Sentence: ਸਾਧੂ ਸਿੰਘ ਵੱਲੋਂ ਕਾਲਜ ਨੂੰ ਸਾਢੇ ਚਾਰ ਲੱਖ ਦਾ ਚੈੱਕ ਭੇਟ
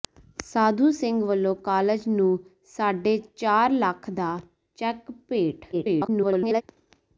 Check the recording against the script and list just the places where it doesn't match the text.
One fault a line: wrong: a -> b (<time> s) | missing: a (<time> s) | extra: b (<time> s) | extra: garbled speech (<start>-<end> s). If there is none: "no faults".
extra: garbled speech (5.7-6.6 s)